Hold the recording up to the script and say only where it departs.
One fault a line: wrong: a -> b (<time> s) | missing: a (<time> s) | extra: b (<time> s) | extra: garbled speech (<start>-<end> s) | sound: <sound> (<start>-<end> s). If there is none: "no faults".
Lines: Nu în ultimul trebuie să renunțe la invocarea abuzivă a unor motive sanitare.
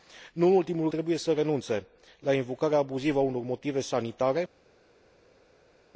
no faults